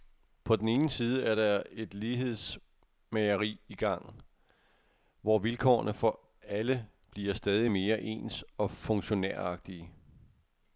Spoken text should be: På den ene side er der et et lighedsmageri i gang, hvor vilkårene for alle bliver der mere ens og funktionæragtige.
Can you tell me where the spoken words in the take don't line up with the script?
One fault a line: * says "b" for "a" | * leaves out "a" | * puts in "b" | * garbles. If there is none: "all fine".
* leaves out "et"
* says "stadig" for "der"